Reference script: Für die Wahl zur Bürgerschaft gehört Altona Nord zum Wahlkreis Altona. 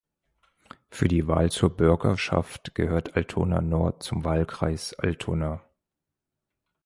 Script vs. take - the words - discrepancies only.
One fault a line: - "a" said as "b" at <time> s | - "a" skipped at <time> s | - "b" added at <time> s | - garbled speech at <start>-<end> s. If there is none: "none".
none